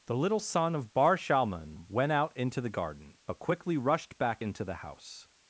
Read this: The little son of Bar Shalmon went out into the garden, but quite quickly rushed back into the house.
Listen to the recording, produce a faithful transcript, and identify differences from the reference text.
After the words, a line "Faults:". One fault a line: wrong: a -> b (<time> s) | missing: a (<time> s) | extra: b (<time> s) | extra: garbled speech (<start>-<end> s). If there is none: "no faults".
The little son of Bar Shalmon went out into the garden, but quickly rushed back into the house.
Faults:
missing: quite (3.4 s)